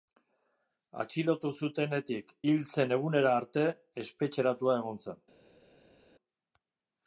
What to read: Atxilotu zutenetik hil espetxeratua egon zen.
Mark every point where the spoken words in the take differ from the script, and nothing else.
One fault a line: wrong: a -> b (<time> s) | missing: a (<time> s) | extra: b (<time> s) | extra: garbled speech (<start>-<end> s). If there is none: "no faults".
extra: zen egunera arte (2.8 s)